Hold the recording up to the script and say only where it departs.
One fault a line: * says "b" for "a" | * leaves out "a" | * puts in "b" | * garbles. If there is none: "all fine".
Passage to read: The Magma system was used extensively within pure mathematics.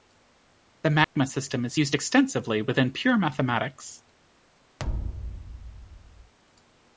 * says "is" for "was"